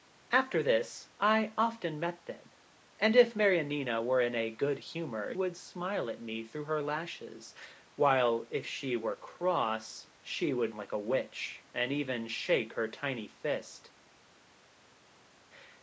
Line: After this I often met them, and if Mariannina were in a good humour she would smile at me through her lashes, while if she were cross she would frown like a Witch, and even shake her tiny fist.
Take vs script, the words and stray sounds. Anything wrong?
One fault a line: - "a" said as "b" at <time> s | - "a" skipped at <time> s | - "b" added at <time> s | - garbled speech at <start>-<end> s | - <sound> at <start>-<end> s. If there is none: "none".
- "she" skipped at 5.4 s
- "frown" skipped at 10.8 s